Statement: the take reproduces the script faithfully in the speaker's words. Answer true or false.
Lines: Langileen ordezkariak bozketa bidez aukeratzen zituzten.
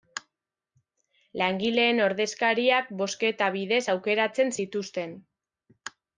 true